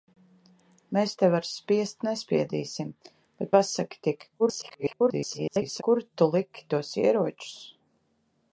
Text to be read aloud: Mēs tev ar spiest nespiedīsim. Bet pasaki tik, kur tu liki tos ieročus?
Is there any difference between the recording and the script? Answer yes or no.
yes